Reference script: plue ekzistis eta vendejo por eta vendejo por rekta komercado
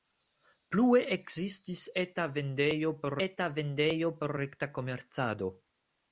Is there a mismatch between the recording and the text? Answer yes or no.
no